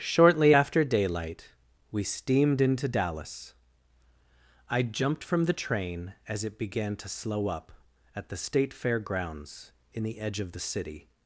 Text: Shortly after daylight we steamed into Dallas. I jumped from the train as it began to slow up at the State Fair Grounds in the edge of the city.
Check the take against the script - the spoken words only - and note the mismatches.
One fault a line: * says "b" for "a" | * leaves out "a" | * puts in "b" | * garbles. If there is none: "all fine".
all fine